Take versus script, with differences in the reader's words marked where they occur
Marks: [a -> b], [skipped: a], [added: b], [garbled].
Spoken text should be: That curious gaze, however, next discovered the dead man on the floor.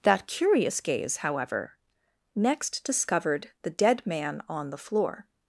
That curious gaze, however, next discovered the dead man on the floor.